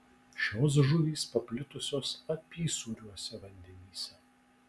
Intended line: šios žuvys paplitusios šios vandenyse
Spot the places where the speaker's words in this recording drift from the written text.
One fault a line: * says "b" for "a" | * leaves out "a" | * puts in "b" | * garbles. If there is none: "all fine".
* says "apysūriuose" for "šios"